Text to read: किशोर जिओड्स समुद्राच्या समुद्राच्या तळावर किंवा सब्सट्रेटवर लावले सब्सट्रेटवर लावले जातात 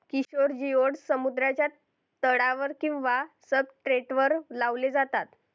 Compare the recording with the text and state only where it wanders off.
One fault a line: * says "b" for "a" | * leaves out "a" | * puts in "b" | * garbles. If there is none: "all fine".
* leaves out "समुद्राच्या"
* leaves out "सब्सट्रेटवर लावले"